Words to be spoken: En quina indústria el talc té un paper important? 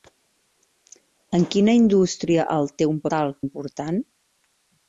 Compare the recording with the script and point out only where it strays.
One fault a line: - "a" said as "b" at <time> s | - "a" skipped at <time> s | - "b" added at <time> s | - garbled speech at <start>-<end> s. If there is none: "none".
- "talc" skipped at 2.7 s
- "paper" said as "talc" at 3.2 s